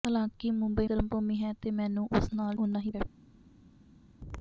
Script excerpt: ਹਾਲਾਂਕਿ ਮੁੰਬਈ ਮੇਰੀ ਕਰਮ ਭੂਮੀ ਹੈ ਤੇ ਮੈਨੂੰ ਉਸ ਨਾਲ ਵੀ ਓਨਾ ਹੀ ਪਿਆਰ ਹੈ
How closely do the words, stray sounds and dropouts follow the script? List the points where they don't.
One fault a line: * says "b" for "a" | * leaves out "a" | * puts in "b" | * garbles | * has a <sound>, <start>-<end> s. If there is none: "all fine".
* leaves out "ਮੇਰੀ"
* leaves out "ਵੀ"
* leaves out "ਪਿਆਰ"